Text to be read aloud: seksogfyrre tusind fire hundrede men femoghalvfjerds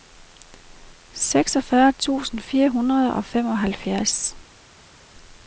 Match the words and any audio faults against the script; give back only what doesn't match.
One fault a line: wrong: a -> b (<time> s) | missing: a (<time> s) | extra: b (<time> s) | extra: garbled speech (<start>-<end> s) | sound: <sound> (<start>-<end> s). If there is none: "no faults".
wrong: men -> og (3.1 s)